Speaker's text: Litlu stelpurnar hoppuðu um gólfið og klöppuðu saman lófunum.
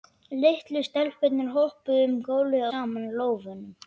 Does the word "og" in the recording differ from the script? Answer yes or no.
yes